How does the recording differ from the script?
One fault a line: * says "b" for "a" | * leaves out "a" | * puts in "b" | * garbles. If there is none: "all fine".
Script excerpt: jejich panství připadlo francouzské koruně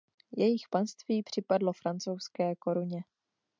all fine